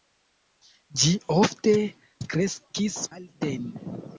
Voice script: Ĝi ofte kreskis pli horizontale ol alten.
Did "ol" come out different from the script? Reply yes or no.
yes